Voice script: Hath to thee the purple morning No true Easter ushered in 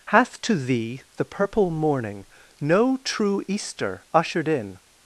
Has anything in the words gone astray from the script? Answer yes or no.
no